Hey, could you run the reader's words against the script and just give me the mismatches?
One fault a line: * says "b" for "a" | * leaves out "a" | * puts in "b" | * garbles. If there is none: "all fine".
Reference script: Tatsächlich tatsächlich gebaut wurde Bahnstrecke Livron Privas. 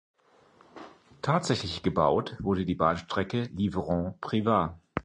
* leaves out "tatsächlich"
* puts in "die"